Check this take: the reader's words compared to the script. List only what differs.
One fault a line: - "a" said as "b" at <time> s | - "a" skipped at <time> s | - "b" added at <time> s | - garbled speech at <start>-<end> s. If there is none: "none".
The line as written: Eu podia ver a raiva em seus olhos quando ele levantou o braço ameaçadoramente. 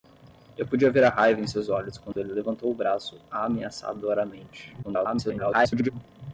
- garbled speech at 4.8-5.9 s